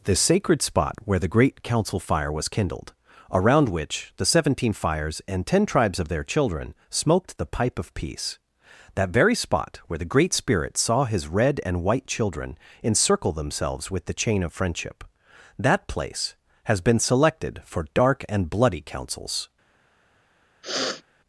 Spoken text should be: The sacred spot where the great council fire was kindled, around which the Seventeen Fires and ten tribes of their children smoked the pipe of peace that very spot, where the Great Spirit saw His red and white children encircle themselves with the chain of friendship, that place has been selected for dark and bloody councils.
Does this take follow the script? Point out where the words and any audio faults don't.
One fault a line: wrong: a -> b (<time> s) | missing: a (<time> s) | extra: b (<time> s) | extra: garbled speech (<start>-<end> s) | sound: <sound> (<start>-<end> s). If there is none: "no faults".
sound: sniff (20.6-21.0 s)